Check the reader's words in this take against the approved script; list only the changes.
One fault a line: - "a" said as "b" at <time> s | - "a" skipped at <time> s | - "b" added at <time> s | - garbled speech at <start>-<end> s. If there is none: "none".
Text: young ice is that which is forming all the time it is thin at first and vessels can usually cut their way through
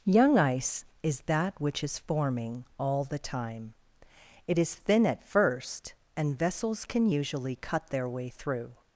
none